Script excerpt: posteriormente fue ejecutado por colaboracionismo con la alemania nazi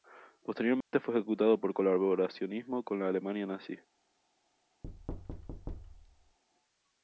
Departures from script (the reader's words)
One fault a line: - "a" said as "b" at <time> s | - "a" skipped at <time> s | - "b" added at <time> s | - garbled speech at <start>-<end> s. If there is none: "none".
none